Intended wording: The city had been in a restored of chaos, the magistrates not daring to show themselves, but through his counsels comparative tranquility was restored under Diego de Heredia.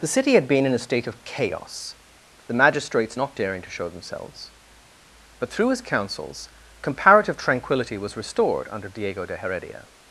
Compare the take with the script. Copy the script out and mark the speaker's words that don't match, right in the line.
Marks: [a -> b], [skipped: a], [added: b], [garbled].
The city had been in a [restored -> state] of chaos, the magistrates not daring to show themselves, but through his counsels comparative tranquility was restored under Diego de Heredia.